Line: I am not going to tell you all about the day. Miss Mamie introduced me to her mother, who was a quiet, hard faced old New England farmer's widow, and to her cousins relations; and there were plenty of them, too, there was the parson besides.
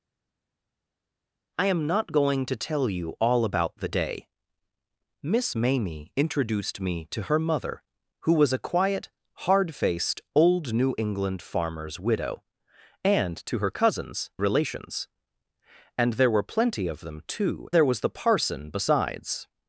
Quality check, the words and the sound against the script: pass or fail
pass